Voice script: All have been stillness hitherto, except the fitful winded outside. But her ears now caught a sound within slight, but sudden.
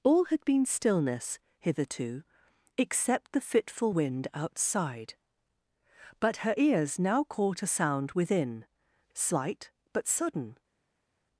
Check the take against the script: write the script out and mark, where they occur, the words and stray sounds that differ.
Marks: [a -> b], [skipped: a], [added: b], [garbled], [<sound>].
All [have -> had] been stillness hitherto, except the fitful [winded -> wind] outside. But her ears now caught a sound within slight, but sudden.